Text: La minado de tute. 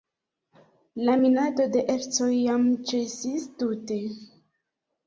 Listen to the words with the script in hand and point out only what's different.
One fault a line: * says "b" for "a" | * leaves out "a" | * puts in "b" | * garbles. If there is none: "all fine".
* puts in "ercoj jam ĉesis"